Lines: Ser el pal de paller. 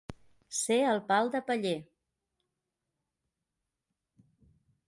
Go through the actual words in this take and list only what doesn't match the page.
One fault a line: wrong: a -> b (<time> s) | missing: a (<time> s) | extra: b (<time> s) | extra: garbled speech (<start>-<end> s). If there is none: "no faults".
no faults